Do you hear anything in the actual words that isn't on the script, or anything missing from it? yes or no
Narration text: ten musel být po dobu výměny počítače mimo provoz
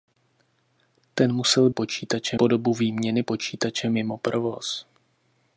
yes